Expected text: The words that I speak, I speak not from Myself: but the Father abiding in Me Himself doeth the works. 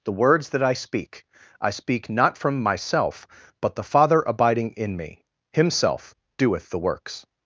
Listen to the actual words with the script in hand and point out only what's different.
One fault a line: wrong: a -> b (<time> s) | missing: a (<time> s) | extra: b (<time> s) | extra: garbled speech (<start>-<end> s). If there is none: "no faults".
no faults